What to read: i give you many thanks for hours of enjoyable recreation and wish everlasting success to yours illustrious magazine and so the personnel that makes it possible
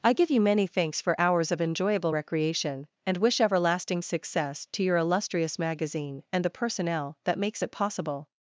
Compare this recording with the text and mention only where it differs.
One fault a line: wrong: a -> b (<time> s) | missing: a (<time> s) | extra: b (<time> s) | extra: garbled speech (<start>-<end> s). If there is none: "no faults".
wrong: yours -> your (4.8 s)
missing: so (6.4 s)